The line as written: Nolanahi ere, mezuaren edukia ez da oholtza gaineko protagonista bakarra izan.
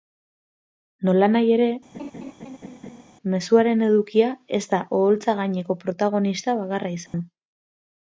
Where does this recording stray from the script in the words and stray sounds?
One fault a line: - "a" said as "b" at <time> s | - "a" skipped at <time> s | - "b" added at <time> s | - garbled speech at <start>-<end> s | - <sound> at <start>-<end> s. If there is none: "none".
- laugh at 1.9-3.0 s
- dropout at 7.1-7.1 s